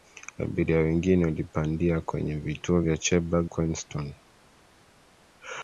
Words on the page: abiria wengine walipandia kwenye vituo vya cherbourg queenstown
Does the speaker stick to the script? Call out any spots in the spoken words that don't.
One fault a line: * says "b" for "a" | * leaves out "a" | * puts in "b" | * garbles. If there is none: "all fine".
all fine